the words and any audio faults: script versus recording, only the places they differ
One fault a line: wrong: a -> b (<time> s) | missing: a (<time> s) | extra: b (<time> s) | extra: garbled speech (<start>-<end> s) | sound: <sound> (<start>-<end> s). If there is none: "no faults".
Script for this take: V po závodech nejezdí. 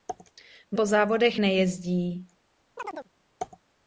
sound: chirp (2.8-3.1 s)